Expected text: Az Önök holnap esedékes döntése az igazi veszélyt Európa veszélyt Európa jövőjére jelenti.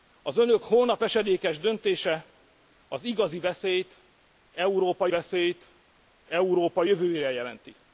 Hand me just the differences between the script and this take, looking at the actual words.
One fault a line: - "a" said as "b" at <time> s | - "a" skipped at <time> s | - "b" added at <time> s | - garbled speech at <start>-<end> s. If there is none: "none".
none